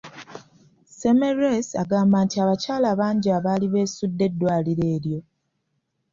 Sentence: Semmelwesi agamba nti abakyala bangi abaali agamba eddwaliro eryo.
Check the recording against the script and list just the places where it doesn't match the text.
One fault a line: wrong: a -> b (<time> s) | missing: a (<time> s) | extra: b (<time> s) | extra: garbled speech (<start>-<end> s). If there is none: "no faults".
wrong: agamba -> beesudde (3.7 s)